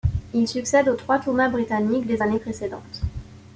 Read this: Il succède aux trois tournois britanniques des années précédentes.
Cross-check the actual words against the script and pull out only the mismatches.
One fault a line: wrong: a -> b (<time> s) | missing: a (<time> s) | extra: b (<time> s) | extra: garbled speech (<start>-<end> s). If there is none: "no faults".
no faults